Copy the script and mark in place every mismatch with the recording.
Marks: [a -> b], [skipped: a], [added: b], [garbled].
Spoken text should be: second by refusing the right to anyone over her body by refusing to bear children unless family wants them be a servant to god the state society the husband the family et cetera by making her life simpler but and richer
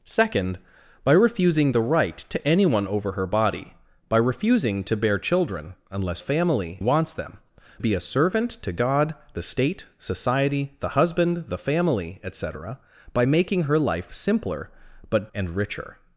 second by refusing the right to anyone over her body by refusing to bear children unless family wants them be a servant to god the state society the husband the family et cetera by making her life simpler but and richer